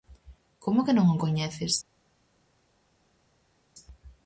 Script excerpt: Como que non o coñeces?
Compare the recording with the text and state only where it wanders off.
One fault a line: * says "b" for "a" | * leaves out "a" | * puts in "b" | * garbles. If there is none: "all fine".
all fine